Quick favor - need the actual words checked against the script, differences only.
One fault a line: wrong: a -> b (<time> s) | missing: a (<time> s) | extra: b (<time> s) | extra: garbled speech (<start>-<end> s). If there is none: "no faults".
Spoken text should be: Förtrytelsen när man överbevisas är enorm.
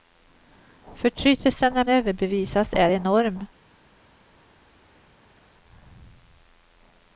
missing: man (1.9 s)